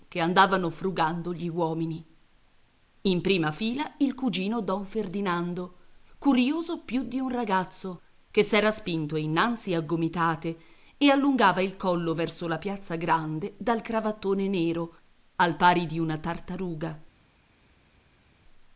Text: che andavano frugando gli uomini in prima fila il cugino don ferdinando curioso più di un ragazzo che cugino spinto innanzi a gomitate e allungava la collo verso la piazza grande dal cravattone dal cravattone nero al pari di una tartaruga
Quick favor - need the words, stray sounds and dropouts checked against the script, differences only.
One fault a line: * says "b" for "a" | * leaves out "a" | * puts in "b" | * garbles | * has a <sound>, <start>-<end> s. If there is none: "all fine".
* says "s'era" for "cugino"
* says "il" for "la"
* leaves out "dal cravattone"